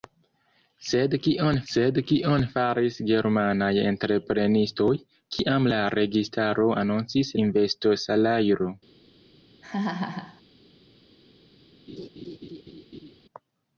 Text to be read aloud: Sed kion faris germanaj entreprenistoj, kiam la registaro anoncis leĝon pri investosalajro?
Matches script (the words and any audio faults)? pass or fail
fail